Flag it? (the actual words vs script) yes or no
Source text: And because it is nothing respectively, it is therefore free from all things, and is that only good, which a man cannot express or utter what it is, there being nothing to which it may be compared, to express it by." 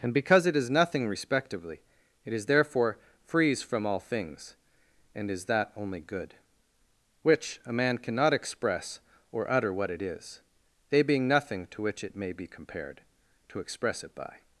yes